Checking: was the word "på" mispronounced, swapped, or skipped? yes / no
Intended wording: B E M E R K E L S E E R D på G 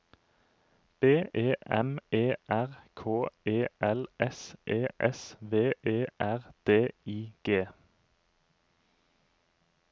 yes